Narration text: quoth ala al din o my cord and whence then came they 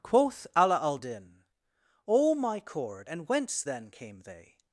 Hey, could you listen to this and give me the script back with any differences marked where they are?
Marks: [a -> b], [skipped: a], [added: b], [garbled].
quoth ala al din o my cord and whence then came they